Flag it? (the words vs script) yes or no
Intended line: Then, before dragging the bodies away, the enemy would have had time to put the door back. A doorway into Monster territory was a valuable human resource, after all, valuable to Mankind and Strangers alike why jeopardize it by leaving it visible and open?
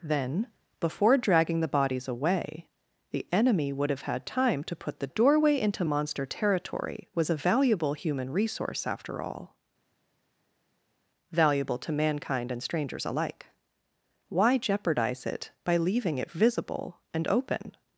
yes